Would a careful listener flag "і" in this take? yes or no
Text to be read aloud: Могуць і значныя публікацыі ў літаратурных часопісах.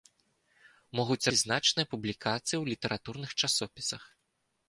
no